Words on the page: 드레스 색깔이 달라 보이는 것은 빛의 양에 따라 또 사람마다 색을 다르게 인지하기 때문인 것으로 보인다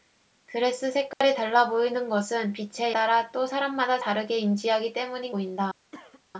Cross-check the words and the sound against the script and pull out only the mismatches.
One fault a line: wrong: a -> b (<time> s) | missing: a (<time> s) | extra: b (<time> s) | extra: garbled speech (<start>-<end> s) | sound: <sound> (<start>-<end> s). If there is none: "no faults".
sound: dropout (1.1-1.2 s)
missing: 양에 (2.9 s)
missing: 색을 (4.0 s)
missing: 것으로 (5.3 s)
sound: cough (5.9-6.2 s)